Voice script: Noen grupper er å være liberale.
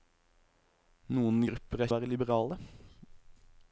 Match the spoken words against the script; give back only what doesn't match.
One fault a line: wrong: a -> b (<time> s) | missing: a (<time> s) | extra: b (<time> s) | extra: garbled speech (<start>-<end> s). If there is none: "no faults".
no faults